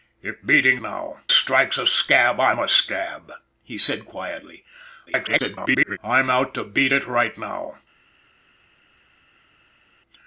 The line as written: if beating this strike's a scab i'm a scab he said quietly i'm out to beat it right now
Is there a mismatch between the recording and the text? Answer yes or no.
yes